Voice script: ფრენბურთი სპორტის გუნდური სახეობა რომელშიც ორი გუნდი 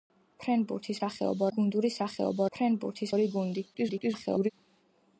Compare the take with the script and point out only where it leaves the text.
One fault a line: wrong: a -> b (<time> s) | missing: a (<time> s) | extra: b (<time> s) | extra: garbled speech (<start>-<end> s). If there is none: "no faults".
wrong: სპორტის -> სახეობა (1.0 s)
wrong: რომელშიც -> ფრენბურთი (2.6 s)
extra: garbled speech (3.7-4.5 s)